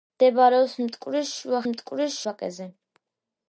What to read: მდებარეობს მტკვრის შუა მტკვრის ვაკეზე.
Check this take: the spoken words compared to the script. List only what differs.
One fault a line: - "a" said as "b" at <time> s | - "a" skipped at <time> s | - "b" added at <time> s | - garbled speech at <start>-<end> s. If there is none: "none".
none